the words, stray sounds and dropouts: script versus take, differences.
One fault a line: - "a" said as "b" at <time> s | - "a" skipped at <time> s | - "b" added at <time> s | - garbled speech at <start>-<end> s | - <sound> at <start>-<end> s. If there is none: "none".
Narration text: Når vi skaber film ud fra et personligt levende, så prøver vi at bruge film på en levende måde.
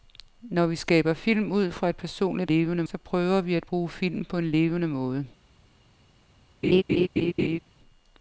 - laugh at 6.6-7.6 s